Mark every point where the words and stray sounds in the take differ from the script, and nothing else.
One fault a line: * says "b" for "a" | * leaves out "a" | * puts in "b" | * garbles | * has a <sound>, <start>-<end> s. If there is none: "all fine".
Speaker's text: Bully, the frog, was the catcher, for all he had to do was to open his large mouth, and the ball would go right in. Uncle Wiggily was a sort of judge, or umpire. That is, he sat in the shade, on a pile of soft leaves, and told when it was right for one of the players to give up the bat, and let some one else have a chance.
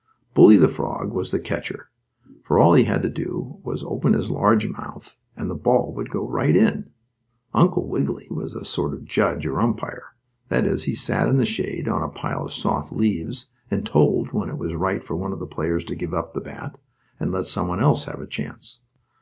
all fine